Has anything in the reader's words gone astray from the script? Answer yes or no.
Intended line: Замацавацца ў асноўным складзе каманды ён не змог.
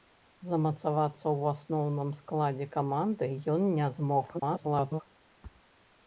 yes